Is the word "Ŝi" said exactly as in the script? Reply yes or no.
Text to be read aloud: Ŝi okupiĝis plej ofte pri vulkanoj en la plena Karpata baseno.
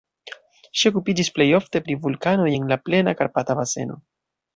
yes